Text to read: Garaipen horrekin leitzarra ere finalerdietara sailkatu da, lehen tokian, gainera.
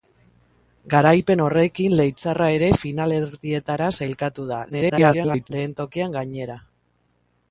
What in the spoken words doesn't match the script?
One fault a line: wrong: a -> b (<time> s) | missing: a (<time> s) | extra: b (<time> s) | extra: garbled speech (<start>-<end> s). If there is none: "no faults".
extra: garbled speech (4.7-5.5 s)